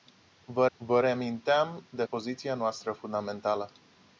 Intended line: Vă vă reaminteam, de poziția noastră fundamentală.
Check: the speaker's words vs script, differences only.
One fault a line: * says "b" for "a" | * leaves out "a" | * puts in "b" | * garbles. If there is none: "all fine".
all fine